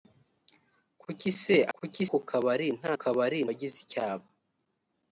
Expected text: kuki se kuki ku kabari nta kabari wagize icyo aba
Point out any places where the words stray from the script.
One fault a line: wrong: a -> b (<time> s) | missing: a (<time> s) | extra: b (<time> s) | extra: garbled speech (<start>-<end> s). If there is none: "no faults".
no faults